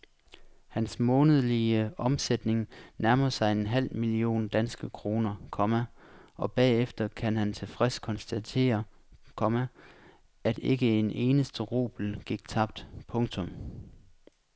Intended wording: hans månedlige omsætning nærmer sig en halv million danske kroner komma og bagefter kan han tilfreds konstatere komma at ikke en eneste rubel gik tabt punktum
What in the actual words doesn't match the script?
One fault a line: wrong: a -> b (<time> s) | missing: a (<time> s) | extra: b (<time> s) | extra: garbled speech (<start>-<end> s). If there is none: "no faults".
no faults